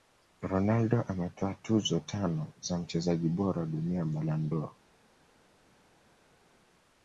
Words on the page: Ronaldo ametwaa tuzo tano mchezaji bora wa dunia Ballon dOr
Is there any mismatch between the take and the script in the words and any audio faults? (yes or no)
yes